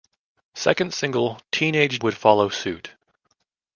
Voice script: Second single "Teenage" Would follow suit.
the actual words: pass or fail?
pass